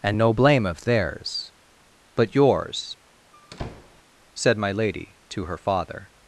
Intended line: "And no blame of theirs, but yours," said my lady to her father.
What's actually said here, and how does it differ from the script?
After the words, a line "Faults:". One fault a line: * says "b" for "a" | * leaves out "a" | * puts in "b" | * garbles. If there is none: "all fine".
"And no blame of theirs, but yours," said my lady to her father.
Faults:
all fine